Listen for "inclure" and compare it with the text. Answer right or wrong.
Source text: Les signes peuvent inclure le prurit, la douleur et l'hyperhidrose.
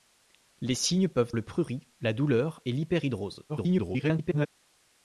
wrong